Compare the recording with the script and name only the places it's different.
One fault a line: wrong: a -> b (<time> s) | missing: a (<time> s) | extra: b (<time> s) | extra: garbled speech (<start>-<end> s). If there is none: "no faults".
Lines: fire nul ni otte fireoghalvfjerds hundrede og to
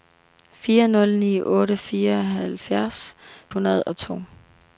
no faults